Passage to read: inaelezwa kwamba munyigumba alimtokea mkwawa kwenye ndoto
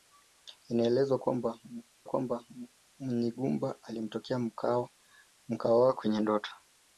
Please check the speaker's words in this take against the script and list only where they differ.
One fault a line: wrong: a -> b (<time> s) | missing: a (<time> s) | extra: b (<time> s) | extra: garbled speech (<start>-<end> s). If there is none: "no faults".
extra: kwamba (2.1 s)